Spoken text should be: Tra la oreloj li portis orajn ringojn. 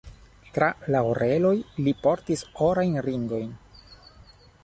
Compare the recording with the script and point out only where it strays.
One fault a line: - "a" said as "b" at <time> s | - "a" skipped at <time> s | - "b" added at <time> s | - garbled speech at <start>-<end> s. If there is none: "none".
none